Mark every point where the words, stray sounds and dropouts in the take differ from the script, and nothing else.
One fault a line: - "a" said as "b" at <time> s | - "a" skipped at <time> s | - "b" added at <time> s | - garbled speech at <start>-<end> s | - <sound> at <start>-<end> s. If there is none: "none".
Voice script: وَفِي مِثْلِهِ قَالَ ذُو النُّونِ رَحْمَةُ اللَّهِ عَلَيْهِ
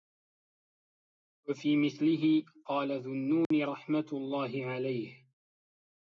- dropout at 3.4-3.5 s